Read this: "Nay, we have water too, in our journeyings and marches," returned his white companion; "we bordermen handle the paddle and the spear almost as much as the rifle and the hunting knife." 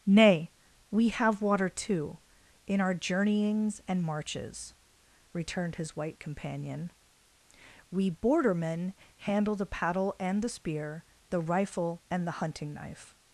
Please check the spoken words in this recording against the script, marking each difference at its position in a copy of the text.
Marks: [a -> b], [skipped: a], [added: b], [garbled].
"Nay, we have water too, in our journeyings and marches," returned his white companion; "we bordermen handle the paddle and the spear [skipped: almost as much as] the rifle and the hunting knife."